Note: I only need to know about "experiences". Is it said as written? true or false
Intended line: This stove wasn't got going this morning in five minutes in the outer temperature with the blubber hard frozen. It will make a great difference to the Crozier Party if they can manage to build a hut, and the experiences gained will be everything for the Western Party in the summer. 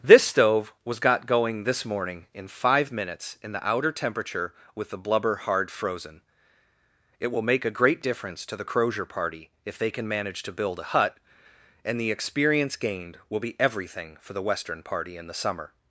false